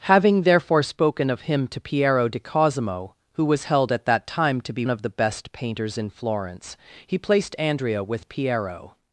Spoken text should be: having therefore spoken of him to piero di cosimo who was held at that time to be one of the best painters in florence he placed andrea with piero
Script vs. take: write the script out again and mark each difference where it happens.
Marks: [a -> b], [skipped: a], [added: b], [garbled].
having therefore spoken of him to piero di cosimo who was held at that time to be [skipped: one] of the best painters in florence he placed andrea with piero